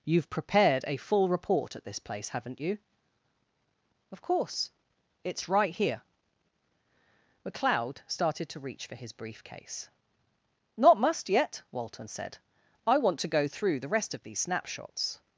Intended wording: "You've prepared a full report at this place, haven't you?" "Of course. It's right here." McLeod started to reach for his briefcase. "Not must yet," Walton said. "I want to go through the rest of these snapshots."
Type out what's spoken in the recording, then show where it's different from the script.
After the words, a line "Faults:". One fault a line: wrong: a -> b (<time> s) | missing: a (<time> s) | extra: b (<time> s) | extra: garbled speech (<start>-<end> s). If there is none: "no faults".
"You've prepared a full report at this place, haven't you?" "Of course. It's right here." McLeod started to reach for his briefcase. "Not must yet," Walton said. "I want to go through the rest of these snapshots."
Faults:
no faults